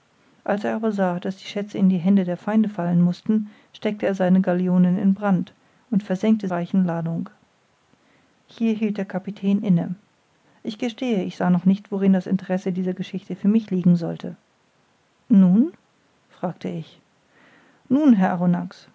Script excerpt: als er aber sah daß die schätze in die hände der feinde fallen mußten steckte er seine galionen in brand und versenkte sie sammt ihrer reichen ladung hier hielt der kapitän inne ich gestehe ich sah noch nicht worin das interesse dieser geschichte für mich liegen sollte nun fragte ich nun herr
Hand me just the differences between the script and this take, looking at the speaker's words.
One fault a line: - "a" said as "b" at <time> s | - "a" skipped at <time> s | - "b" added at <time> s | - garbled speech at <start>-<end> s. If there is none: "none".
- "sie sammt ihrer" skipped at 6.5 s